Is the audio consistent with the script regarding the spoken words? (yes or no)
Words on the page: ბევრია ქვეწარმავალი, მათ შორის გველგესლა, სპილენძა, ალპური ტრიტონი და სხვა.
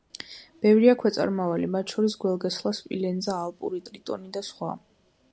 yes